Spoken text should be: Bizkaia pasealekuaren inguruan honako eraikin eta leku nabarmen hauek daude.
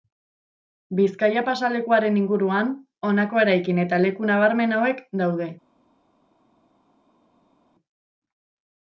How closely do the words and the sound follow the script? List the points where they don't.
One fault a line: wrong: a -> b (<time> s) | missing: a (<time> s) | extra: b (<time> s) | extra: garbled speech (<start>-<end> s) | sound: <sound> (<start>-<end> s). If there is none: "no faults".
no faults